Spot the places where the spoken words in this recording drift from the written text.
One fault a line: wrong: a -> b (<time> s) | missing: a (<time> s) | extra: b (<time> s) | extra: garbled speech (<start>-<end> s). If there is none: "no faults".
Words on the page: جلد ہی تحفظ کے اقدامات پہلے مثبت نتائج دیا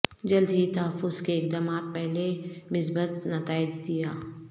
no faults